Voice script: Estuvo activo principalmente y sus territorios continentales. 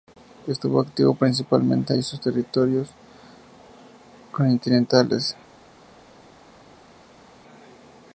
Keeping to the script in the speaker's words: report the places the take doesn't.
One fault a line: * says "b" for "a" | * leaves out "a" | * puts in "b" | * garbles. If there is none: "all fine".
all fine